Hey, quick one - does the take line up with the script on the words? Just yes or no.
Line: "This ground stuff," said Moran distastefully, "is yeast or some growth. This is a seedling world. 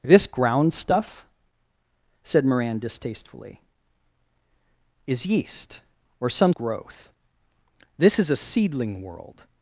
yes